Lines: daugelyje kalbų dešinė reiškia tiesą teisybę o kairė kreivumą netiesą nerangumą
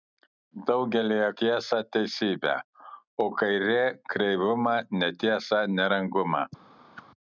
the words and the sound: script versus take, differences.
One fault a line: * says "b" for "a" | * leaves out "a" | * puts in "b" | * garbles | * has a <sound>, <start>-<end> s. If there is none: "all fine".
* leaves out "kalbų dešinė reiškia"
* has a whoosh, 7.0-7.1 s